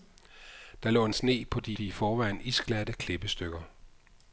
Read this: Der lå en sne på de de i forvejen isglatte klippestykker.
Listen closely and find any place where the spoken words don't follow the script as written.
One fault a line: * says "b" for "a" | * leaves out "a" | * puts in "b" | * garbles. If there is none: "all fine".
all fine